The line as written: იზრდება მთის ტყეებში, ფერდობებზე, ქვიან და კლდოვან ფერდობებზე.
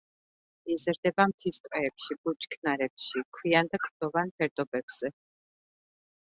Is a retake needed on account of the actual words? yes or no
yes